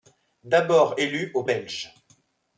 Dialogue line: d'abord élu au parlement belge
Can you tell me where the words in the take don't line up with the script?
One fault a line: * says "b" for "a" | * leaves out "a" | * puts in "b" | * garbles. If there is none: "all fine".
* leaves out "parlement"